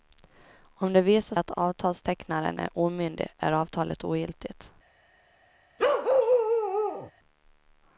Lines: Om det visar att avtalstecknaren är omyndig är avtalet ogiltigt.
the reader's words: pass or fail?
pass